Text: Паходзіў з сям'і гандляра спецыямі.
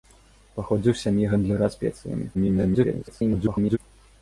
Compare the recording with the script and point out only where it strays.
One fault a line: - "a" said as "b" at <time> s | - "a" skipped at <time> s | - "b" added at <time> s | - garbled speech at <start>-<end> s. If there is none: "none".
- garbled speech at 2.3-3.8 s